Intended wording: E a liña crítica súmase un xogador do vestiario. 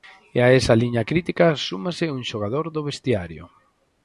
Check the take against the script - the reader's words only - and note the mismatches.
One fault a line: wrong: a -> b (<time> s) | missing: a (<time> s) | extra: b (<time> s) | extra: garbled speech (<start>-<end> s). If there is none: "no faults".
extra: esa (0.6 s)